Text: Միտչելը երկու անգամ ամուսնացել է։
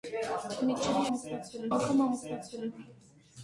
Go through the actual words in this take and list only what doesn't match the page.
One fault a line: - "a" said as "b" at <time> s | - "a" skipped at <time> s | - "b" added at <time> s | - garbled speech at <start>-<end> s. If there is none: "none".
- "երկու" said as "ամուսնացել" at 1.1 s